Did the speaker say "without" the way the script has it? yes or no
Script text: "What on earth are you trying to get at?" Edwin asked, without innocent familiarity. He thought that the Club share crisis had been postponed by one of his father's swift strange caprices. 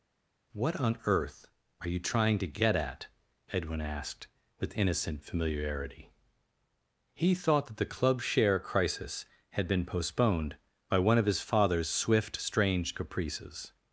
no